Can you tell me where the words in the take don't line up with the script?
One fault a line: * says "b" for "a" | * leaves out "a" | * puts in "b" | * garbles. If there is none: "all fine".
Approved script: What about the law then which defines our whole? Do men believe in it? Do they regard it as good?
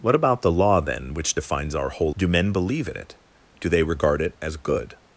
all fine